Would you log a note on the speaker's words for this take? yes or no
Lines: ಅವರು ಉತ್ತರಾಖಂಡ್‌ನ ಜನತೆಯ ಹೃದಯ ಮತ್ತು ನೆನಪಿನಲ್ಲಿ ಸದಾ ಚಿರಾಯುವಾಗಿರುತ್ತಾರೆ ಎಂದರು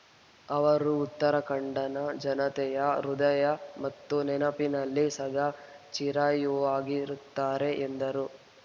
no